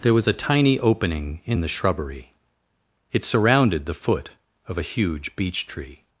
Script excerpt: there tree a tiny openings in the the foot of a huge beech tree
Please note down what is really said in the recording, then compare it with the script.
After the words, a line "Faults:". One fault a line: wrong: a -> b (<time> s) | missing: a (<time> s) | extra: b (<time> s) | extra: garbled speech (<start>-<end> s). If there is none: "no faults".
there was a tiny opening in the shrubbery it surrounded the foot of a huge beech tree
Faults:
wrong: tree -> was (0.1 s)
wrong: openings -> opening (0.8 s)
extra: shrubbery it surrounded (1.7 s)